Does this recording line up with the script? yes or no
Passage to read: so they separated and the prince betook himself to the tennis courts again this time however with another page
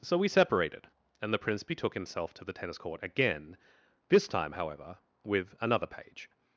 no